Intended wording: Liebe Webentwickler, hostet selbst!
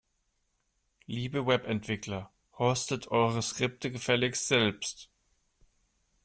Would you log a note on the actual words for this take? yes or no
yes